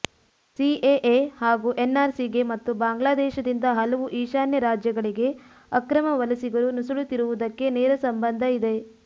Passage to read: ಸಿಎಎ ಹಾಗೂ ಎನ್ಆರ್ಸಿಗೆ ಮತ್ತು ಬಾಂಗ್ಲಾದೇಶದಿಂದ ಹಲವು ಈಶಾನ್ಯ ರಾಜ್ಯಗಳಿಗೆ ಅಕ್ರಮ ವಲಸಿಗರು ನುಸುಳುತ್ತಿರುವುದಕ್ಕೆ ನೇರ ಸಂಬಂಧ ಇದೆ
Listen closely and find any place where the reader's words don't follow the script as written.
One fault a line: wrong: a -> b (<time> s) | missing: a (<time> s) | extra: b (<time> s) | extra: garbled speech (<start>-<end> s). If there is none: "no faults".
no faults